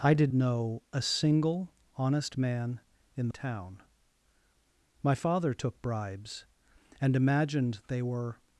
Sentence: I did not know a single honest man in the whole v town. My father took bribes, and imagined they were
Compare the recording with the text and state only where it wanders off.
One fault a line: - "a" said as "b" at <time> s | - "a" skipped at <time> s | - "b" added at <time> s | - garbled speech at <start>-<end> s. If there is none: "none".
- "not" skipped at 0.3 s
- "the whole v" skipped at 3.3 s